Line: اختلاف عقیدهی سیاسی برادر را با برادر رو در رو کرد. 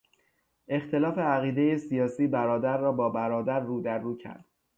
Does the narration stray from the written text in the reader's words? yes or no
no